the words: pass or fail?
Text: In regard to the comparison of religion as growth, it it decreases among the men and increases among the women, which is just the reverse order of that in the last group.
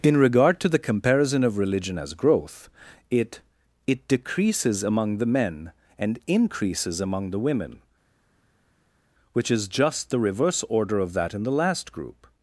pass